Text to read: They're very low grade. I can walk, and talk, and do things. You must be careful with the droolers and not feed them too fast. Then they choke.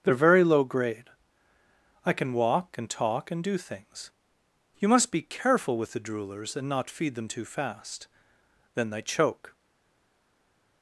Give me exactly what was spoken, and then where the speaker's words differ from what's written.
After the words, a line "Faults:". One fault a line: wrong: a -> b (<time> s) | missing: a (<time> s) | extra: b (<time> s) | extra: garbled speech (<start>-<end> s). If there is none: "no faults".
They're very low grade. I can walk, and talk, and do things. You must be careful with the droolers and not feed them too fast. Then they choke.
Faults:
no faults